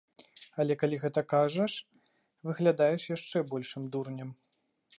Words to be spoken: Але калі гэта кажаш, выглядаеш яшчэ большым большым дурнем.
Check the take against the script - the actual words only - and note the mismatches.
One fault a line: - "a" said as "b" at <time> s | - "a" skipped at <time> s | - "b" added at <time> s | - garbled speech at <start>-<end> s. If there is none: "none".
- "большым" skipped at 3.8 s